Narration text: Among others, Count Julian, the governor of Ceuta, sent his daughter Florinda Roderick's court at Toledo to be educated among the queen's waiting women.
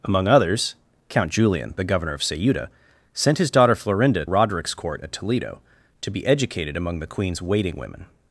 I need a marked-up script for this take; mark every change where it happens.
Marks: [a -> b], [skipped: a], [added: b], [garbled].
Among others, Count Julian, the governor of Ceuta, sent his daughter Florinda Roderick's court at Toledo to be educated among the queen's waiting women.